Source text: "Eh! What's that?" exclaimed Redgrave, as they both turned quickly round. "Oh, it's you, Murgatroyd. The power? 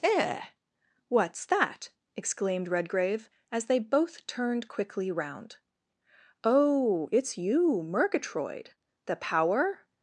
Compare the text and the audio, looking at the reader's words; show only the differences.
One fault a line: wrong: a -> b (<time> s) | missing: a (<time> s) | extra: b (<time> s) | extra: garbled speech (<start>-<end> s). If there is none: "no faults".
no faults